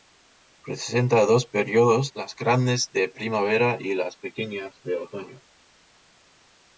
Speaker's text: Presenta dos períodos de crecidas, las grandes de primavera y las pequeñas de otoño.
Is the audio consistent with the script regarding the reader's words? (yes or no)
no